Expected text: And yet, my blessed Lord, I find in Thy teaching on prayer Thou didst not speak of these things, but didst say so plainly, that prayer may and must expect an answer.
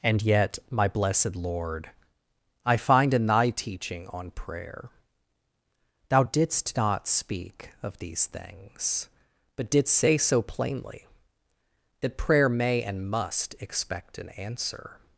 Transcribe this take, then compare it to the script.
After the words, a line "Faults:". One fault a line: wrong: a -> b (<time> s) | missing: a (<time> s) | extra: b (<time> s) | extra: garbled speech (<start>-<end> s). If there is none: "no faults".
And yet, my blessed Lord, I find in Thy teaching on prayer Thou didst not speak of these things, but didst say so plainly, that prayer may and must expect an answer.
Faults:
no faults